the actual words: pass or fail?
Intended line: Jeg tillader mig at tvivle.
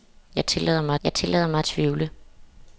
fail